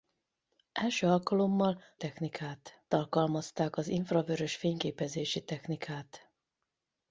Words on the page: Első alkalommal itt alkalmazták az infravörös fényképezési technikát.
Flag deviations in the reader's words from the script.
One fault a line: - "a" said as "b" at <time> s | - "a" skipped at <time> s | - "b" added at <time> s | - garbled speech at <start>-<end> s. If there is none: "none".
- "itt" said as "technikát" at 2.0 s